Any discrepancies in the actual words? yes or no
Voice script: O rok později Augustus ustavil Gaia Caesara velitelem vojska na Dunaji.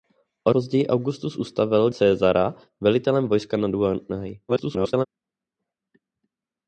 yes